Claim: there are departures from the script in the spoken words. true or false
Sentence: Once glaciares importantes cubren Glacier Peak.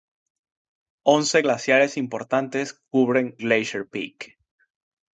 false